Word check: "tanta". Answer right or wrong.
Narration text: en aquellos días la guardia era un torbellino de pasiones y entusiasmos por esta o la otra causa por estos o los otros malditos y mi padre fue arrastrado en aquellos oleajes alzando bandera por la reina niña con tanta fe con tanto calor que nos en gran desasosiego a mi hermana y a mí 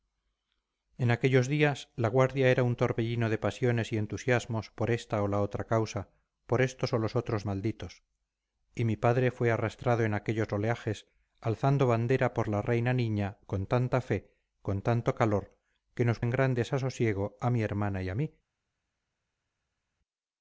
right